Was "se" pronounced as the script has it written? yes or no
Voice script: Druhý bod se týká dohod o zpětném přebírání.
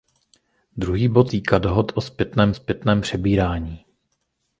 no